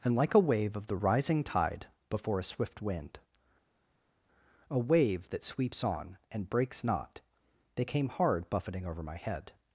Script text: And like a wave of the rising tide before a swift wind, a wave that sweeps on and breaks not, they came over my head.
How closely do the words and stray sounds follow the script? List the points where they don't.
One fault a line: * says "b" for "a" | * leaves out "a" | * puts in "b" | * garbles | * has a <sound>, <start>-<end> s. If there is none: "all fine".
* puts in "hard buffeting"